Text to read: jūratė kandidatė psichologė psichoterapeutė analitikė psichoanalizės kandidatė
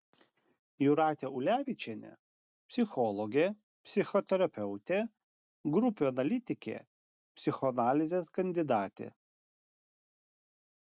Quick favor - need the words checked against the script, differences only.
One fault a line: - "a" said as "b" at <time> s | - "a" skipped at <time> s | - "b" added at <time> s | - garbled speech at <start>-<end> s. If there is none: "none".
- "kandidatė" said as "ulevičienė" at 1.4 s
- "grupių" added at 5.8 s